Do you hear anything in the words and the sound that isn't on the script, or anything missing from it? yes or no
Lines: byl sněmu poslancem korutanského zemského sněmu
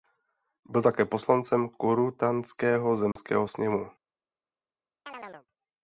yes